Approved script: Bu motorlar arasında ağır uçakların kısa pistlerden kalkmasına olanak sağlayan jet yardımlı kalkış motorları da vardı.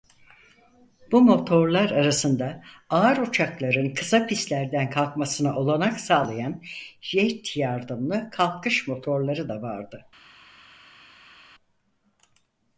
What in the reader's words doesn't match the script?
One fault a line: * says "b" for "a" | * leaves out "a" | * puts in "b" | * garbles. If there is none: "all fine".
all fine